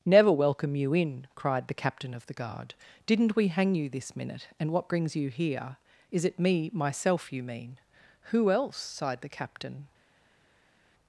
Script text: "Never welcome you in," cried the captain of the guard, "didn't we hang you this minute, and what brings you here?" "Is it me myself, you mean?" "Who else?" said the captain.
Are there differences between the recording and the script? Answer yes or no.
yes